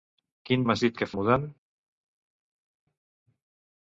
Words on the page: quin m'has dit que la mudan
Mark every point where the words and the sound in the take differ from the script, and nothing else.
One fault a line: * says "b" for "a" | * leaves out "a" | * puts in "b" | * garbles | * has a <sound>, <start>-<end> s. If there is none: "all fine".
all fine